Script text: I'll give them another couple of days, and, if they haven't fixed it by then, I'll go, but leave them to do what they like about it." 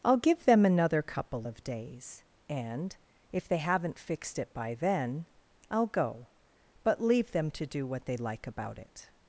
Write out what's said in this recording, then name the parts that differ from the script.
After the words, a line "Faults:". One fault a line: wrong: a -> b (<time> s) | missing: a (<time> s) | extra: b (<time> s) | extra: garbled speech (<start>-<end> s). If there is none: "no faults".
I'll give them another couple of days, and, if they haven't fixed it by then, I'll go, but leave them to do what they like about it."
Faults:
no faults